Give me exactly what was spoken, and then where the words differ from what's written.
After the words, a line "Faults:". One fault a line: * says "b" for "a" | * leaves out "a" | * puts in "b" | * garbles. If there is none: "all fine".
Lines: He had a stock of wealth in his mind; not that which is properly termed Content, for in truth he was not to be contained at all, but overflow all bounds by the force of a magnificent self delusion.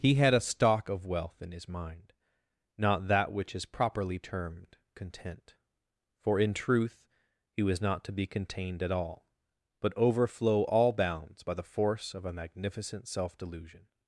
He had a stock of wealth in his mind; not that which is properly termed Content, for in truth he was not to be contained at all, but overflow all bounds by the force of a magnificent self delusion.
Faults:
all fine